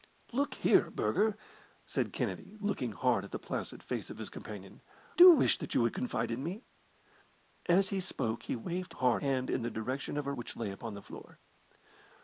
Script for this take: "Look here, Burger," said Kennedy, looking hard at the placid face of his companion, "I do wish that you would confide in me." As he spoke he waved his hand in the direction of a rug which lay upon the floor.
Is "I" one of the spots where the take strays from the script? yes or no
yes